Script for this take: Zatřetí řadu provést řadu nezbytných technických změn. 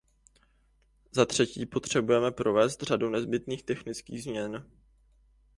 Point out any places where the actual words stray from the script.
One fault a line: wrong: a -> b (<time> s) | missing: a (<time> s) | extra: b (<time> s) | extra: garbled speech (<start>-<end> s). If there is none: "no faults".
wrong: řadu -> potřebujeme (1.6 s)